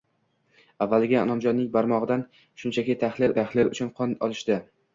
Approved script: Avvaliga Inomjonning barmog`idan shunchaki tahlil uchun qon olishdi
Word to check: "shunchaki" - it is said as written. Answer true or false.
true